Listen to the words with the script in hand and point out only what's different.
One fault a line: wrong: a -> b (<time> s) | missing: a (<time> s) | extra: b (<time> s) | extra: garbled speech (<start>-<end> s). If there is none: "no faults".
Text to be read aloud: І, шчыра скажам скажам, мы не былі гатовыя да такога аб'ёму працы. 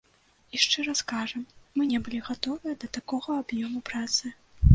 missing: скажам (1.4 s)